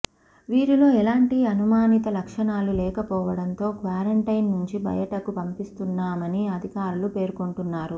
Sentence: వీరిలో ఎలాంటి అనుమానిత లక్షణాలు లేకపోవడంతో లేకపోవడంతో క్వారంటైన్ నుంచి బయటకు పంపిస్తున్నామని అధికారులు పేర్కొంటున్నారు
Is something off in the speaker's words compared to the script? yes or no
yes